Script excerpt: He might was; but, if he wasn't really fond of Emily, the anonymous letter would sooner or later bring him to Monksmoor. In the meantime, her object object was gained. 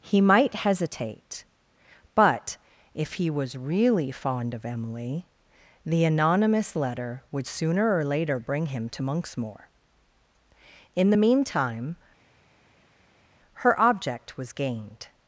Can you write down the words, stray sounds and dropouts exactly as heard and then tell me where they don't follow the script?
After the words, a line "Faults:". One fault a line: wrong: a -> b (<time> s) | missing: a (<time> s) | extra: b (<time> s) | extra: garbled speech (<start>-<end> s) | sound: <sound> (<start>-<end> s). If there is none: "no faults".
He might hesitate; but, if he was really fond of Emily, the anonymous letter would sooner or later bring him to Monksmoor. In the meantime, her object was gained.
Faults:
wrong: was -> hesitate (0.6 s)
wrong: wasn't -> was (3.3 s)
missing: object (14.4 s)